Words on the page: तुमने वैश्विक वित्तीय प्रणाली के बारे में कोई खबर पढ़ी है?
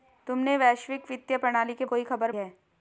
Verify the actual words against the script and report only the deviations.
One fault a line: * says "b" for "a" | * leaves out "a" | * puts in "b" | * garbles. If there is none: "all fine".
* leaves out "बारे में"
* leaves out "पढ़ी"